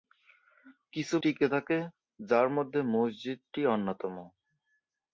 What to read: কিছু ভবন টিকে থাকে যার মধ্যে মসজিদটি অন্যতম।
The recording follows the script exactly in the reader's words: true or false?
false